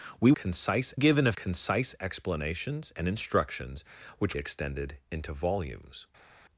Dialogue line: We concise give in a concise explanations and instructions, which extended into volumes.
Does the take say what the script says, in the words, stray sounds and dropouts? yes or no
yes